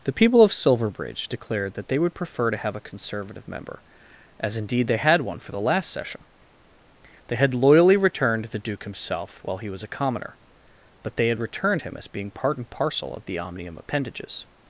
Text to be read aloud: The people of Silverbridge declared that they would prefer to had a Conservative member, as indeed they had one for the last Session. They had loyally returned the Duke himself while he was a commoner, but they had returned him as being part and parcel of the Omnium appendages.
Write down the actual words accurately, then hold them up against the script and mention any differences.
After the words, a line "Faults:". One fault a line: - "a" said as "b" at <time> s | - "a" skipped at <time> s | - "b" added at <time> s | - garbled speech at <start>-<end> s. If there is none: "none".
The people of Silverbridge declared that they would prefer to have a Conservative member, as indeed they had one for the last Session. They had loyally returned the Duke himself while he was a commoner, but they had returned him as being part and parcel of the Omnium appendages.
Faults:
- "had" said as "have" at 2.6 s